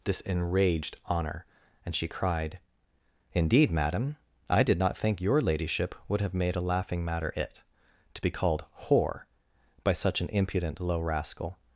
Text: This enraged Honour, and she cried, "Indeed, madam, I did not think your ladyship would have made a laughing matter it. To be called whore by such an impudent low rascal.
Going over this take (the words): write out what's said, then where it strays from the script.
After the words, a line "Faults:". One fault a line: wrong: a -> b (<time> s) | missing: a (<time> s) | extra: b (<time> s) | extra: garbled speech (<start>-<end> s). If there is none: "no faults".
This enraged Honour, and she cried, "Indeed, madam, I did not think your ladyship would have made a laughing matter it. To be called whore by such an impudent low rascal.
Faults:
no faults